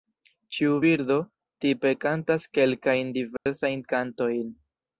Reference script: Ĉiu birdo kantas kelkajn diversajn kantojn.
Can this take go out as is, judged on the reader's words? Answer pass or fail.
fail